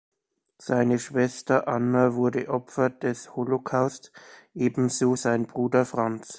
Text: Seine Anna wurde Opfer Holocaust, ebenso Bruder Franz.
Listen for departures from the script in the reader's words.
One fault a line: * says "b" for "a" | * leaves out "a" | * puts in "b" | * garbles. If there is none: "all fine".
* puts in "Schwester"
* puts in "des"
* puts in "sein"